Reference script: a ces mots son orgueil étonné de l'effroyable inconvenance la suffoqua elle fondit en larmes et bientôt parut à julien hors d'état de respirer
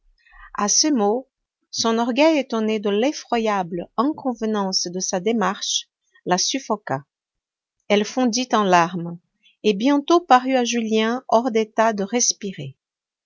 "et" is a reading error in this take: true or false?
false